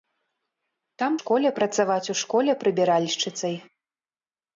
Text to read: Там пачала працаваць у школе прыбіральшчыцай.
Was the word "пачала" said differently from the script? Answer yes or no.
yes